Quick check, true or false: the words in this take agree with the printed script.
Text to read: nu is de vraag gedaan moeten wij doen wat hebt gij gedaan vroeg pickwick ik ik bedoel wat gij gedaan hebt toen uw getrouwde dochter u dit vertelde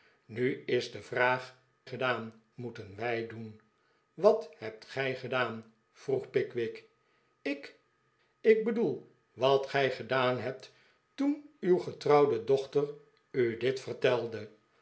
true